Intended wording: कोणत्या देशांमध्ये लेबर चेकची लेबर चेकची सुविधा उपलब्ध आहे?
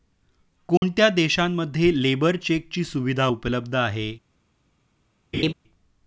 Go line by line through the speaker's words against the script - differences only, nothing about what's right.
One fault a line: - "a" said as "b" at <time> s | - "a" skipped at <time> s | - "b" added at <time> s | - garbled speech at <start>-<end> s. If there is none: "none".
- "लेबर चेकची" skipped at 2.8 s